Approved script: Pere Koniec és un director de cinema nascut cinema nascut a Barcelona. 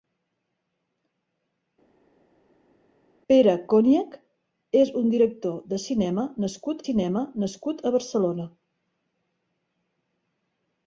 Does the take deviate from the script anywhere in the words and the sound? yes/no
no